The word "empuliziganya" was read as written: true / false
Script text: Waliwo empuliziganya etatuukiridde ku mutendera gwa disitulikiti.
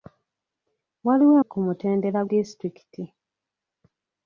false